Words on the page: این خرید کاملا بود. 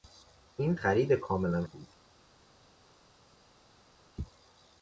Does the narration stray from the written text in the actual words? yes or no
no